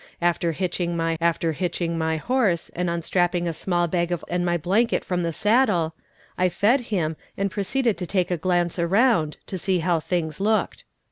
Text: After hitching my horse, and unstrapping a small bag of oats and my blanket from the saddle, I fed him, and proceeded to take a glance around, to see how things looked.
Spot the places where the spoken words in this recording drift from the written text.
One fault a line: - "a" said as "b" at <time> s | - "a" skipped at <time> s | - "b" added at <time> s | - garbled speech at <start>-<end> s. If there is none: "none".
- "after hitching my" added at 1.2 s
- "oats" skipped at 4.2 s